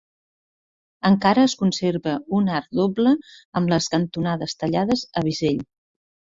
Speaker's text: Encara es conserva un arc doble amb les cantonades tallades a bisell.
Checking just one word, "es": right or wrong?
right